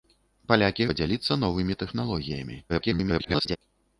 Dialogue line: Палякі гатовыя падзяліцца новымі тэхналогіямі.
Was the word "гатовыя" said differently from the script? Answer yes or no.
yes